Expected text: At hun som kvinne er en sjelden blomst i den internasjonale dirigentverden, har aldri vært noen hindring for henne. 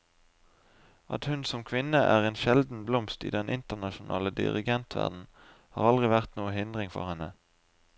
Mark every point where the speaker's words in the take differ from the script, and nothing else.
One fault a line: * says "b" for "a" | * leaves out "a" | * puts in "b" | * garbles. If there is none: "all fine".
all fine